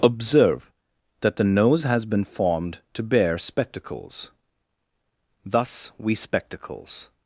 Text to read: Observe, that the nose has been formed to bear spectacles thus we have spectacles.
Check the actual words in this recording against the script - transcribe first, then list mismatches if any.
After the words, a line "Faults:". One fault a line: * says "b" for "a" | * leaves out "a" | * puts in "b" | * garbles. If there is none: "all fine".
Observe, that the nose has been formed to bear spectacles thus we spectacles.
Faults:
* leaves out "have"